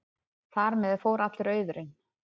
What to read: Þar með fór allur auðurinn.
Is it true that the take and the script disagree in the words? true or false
false